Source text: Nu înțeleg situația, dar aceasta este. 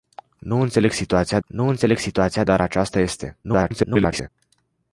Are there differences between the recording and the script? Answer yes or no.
yes